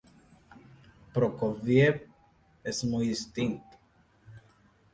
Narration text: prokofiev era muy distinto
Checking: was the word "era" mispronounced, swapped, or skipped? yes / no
yes